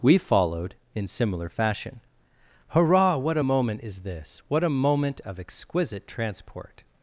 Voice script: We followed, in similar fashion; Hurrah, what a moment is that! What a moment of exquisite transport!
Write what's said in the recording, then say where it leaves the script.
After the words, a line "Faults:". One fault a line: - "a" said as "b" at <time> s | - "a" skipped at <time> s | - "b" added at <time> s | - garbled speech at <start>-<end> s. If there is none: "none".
We followed, in similar fashion; Hurrah, what a moment is this! What a moment of exquisite transport!
Faults:
- "that" said as "this" at 4.0 s